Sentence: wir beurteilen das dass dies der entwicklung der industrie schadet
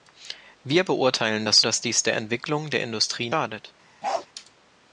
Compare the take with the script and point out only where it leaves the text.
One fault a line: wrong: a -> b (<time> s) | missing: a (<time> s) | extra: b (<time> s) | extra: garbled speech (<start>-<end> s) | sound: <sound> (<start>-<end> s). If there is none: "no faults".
sound: bark (4.0-4.3 s)